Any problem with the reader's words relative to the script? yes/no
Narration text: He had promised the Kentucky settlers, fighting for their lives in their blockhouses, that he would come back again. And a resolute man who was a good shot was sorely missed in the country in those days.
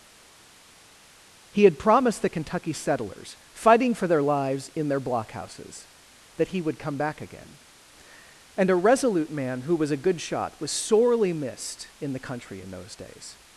no